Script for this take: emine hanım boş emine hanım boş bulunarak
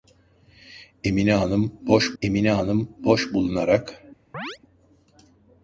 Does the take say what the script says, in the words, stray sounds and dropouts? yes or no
no